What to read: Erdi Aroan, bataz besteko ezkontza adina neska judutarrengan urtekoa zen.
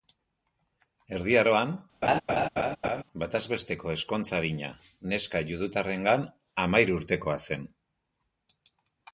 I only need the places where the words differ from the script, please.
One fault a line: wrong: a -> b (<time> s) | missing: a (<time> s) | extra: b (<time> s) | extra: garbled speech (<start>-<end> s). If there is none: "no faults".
extra: hamahiru (6.7 s)